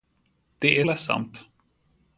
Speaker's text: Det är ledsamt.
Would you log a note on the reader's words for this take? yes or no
no